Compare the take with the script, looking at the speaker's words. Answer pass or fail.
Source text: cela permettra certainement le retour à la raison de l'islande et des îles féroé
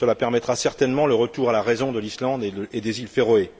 pass